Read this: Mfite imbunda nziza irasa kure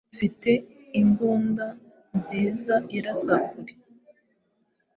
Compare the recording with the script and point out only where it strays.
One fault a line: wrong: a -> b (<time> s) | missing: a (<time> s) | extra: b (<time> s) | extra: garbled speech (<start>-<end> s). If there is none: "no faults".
no faults